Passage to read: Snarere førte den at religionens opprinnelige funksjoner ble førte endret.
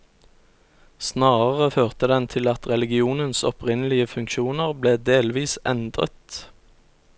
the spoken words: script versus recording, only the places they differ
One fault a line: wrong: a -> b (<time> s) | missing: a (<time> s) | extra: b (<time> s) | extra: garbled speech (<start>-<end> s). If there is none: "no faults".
extra: til (2.3 s)
wrong: førte -> delvis (5.1 s)